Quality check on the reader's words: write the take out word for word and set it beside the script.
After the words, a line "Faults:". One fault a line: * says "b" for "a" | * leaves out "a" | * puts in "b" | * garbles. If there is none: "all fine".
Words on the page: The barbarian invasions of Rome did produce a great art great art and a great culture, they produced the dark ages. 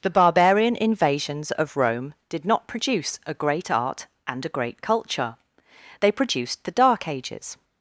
The barbarian invasions of Rome did not produce a great art and a great culture, they produced the dark ages.
Faults:
* puts in "not"
* leaves out "great art"